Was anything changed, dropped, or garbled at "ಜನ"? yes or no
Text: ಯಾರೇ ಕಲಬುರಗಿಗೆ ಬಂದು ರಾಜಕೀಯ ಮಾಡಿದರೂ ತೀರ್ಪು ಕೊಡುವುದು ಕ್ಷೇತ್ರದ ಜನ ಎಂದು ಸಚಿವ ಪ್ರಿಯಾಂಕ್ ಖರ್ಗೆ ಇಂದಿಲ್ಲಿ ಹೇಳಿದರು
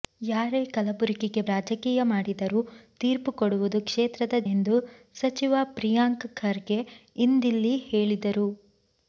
yes